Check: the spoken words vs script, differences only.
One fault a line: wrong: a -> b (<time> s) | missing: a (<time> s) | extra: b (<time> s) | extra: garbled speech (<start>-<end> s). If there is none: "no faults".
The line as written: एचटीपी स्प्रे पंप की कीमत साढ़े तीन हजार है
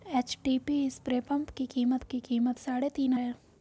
extra: की कीमत (2.0 s)
missing: हजार (3.1 s)